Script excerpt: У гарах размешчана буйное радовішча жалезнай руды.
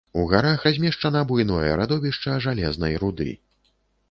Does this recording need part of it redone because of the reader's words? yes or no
no